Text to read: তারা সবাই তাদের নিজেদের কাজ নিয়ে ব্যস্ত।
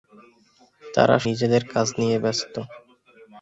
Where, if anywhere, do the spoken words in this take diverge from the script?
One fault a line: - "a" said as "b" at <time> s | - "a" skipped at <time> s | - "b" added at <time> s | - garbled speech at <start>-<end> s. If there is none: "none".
- "সবাই তাদের" skipped at 1.2 s